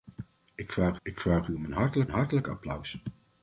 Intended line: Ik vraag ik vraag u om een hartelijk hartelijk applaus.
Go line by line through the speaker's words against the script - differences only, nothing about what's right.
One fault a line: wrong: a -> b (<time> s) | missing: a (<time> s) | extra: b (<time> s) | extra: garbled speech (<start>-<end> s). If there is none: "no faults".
no faults